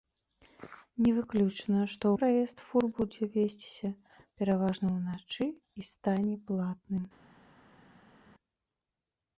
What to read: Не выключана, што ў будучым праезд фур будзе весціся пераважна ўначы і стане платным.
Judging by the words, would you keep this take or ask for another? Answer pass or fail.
fail